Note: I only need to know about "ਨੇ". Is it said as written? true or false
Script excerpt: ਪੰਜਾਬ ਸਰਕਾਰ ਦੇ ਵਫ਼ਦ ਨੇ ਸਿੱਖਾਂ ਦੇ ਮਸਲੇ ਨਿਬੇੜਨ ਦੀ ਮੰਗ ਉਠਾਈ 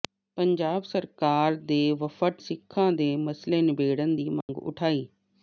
false